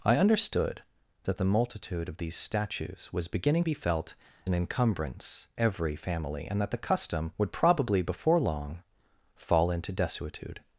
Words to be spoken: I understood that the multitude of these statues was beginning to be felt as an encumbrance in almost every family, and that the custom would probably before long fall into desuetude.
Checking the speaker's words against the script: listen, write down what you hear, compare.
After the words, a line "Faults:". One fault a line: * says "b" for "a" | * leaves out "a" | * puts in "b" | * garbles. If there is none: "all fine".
I understood that the multitude of these statues was beginning be felt an encumbrance every family, and that the custom would probably before long fall into desuetude.
Faults:
* leaves out "to"
* leaves out "as"
* leaves out "in almost"